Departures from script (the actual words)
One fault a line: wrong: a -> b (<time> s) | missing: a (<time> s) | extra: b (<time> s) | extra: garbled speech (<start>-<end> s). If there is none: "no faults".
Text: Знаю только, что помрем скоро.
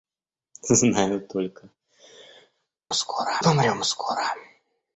wrong: что -> скоро (2.9 s)